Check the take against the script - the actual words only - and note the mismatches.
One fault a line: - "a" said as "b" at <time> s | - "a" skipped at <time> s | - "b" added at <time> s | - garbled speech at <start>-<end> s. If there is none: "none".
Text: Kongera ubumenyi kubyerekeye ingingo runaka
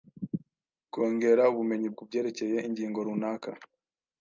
none